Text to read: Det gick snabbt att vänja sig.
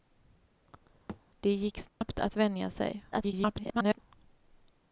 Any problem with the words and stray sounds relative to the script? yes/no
yes